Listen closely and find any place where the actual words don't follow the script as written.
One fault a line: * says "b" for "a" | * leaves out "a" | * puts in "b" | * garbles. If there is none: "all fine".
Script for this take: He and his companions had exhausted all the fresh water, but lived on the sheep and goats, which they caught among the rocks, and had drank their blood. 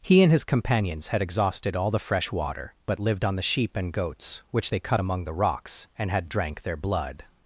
* says "cut" for "caught"